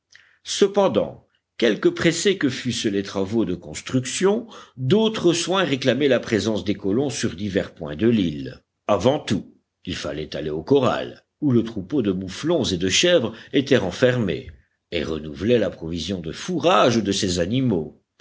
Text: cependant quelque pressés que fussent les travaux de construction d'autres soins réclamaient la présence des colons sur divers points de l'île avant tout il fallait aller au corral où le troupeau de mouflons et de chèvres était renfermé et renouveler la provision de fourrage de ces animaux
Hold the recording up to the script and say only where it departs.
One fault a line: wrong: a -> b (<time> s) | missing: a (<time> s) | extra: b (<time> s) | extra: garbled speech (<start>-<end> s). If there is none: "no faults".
no faults